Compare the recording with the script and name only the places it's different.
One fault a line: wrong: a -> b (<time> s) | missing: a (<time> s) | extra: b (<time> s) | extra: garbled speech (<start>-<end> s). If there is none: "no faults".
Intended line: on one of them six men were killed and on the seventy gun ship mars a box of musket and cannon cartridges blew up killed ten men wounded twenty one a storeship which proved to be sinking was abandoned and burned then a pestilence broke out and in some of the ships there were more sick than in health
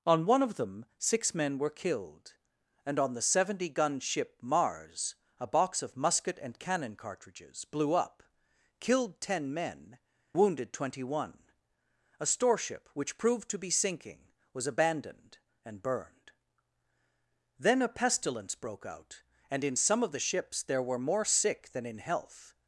no faults